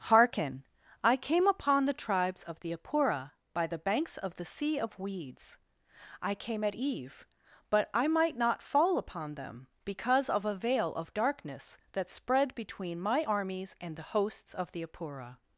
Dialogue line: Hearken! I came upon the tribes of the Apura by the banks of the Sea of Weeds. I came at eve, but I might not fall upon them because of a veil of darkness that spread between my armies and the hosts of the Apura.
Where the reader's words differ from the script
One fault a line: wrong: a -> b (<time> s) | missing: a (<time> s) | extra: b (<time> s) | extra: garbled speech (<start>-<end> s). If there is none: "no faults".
no faults